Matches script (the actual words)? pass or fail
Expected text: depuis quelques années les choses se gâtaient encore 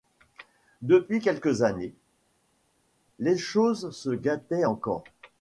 pass